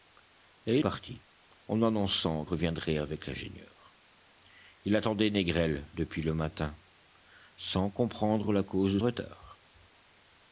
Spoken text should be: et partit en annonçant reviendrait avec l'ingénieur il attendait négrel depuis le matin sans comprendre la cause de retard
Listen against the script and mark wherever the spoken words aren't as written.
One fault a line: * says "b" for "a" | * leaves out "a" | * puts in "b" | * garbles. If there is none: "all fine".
all fine